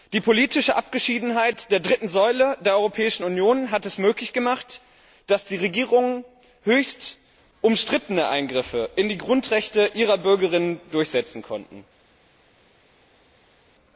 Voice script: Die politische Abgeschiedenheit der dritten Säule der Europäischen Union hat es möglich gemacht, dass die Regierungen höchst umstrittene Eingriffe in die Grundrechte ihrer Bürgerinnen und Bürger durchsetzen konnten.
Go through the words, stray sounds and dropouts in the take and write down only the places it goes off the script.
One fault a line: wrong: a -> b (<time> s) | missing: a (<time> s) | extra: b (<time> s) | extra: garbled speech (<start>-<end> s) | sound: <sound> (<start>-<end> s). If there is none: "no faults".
no faults